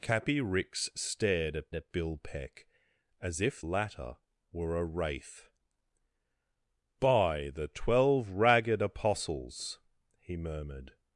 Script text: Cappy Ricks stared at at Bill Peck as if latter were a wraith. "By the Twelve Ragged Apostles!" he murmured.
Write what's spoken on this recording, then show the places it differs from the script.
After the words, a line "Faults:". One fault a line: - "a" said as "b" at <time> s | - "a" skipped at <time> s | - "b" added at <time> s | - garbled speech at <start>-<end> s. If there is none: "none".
Cappy Ricks stared at at Bill Peck as if latter were a wraith. "By the Twelve Ragged Apostles!" he murmured.
Faults:
none